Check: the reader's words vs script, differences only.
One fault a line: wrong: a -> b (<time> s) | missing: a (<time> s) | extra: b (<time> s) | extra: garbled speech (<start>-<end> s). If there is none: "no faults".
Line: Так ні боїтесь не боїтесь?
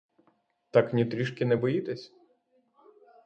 wrong: боїтесь -> трішки (1.1 s)